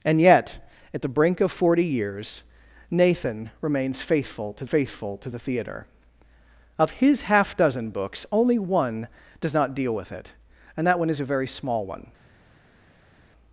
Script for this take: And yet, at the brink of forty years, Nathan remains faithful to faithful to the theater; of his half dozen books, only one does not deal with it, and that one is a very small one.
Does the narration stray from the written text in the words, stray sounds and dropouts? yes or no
no